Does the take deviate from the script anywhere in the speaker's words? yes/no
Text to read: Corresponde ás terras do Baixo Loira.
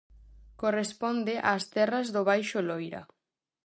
no